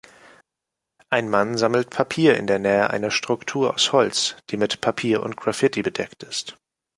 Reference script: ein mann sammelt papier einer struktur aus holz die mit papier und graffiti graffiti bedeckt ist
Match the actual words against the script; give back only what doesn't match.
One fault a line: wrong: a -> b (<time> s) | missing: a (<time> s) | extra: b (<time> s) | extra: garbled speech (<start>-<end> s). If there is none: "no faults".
extra: in der nähe (2.4 s)
missing: graffiti (5.8 s)